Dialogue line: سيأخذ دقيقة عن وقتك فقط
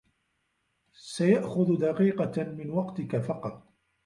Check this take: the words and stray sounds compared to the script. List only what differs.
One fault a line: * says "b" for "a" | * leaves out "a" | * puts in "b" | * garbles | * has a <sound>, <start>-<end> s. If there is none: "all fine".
* says "من" for "عن"